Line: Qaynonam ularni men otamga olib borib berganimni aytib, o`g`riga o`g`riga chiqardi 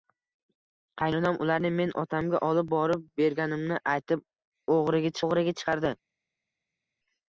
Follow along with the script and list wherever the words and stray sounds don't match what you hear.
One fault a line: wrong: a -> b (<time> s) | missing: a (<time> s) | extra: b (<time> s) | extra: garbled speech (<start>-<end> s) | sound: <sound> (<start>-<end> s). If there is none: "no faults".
no faults